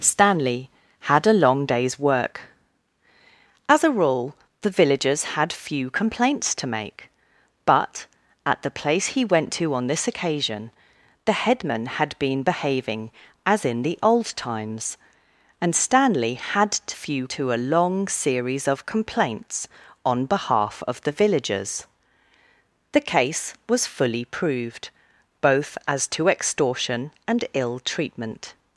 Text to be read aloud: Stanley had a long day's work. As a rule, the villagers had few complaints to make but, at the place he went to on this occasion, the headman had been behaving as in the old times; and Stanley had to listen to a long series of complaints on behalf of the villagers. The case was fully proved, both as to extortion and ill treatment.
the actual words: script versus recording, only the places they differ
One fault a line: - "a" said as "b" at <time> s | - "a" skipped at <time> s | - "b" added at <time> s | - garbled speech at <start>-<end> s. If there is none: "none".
- "listen" said as "few" at 16.9 s